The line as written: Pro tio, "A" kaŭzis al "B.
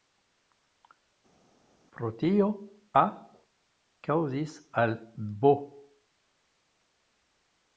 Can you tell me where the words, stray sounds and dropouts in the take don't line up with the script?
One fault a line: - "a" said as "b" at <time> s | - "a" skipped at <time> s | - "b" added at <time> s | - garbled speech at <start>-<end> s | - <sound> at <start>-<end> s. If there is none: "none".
none